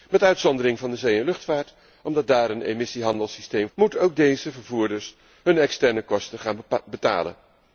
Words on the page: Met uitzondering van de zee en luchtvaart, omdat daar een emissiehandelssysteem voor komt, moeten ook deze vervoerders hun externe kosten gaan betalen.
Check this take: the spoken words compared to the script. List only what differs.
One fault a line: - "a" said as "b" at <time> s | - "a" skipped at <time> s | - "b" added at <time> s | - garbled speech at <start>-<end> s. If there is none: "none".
- "voor komt" skipped at 3.7 s